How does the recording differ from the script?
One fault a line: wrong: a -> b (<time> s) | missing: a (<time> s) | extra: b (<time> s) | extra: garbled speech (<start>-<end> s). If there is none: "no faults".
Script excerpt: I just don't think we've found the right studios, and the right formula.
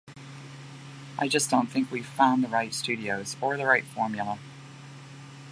wrong: and -> or (3.4 s)